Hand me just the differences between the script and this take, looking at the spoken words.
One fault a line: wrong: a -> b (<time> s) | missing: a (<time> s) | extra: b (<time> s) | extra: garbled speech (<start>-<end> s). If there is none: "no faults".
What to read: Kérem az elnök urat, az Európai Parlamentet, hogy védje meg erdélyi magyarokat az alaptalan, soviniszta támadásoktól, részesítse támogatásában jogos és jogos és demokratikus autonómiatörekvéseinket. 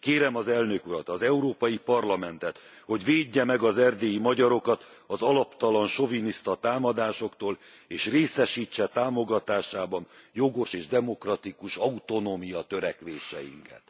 extra: az (3.6 s)
extra: és (7.9 s)
missing: jogos és (10.9 s)